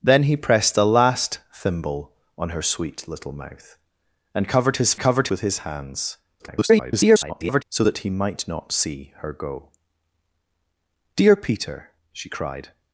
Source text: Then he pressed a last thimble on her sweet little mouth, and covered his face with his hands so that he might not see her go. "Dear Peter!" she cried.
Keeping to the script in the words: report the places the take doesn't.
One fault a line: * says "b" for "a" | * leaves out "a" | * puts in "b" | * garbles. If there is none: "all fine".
* says "covered" for "face"
* garbles